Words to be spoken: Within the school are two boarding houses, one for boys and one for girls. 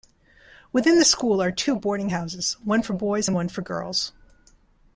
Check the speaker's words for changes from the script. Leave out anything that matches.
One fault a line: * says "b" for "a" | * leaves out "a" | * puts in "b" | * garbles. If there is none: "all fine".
all fine